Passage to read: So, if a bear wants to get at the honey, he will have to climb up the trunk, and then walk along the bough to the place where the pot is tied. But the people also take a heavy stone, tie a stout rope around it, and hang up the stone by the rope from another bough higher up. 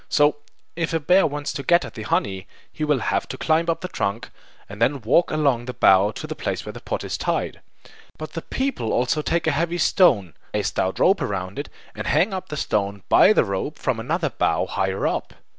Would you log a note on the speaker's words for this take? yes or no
yes